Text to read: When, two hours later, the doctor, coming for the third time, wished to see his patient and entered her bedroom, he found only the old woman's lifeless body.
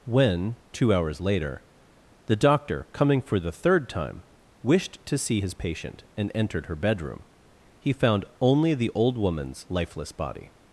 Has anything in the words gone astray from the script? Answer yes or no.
no